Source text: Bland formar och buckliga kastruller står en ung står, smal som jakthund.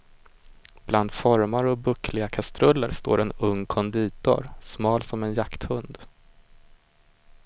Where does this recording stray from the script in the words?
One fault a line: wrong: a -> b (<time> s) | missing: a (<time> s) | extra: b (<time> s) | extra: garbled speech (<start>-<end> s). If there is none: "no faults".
wrong: står -> konditor (3.7 s)
extra: en (5.2 s)